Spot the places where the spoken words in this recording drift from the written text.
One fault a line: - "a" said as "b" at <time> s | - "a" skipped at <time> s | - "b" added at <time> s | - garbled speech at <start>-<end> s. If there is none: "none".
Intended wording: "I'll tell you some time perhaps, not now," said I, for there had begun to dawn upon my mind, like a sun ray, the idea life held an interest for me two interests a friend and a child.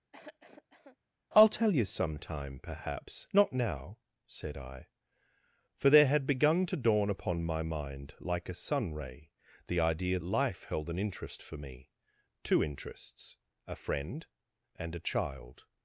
none